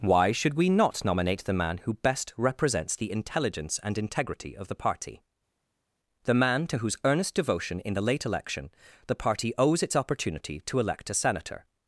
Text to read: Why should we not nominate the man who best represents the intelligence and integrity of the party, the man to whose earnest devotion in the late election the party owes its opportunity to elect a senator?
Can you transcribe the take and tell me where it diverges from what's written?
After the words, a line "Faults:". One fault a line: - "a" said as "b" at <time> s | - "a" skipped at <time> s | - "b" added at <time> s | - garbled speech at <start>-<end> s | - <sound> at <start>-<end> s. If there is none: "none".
Why should we not nominate the man who best represents the intelligence and integrity of the party, the man to whose earnest devotion in the late election the party owes its opportunity to elect a senator?
Faults:
none